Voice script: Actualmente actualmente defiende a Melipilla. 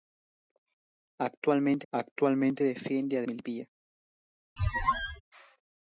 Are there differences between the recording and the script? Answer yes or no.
no